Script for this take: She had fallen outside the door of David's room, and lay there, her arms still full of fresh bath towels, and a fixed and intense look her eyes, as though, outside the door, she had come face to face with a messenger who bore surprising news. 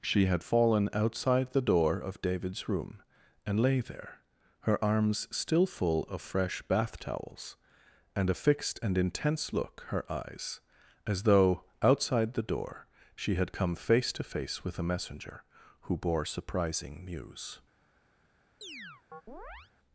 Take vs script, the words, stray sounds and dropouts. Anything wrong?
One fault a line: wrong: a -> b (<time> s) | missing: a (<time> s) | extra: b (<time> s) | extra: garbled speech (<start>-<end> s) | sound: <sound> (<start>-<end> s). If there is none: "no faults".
sound: chirp (18.6-19.7 s)